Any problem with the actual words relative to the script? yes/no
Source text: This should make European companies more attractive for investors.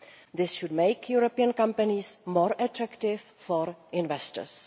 no